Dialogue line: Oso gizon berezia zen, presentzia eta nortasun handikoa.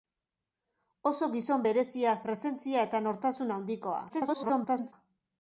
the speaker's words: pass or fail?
fail